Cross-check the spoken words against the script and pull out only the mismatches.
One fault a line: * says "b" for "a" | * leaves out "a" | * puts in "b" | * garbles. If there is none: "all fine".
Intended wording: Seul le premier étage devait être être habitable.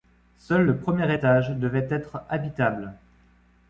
* leaves out "être"